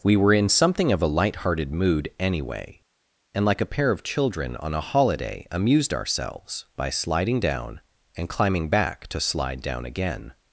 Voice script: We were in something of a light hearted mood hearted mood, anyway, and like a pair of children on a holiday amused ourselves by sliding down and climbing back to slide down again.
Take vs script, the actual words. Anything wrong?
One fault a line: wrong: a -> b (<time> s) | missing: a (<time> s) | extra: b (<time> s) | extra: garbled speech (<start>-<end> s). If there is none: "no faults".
missing: hearted mood (2.1 s)